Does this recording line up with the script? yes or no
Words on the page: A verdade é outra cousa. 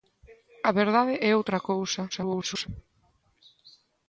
no